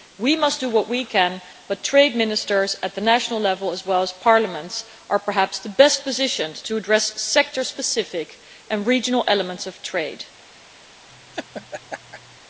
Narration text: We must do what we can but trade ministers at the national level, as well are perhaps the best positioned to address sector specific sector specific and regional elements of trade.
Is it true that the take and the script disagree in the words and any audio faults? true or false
true